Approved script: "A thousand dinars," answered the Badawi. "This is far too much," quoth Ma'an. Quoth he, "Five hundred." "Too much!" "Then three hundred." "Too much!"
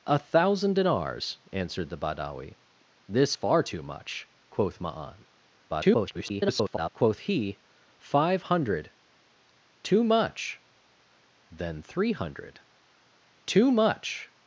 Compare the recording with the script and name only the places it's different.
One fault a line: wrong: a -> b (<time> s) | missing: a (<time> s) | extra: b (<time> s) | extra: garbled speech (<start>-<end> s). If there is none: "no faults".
missing: is (3.4 s)
extra: garbled speech (5.7-6.9 s)